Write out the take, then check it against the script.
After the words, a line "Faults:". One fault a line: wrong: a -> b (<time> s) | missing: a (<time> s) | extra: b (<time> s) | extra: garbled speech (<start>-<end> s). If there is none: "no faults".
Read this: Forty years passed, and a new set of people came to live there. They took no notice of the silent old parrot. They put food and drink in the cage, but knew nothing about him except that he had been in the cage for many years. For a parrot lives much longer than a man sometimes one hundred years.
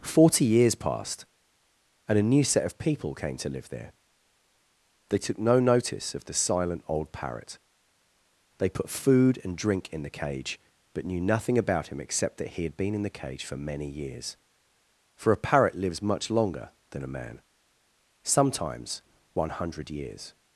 Forty years passed, and a new set of people came to live there. They took no notice of the silent old parrot. They put food and drink in the cage, but knew nothing about him except that he had been in the cage for many years. For a parrot lives much longer than a man sometimes one hundred years.
Faults:
no faults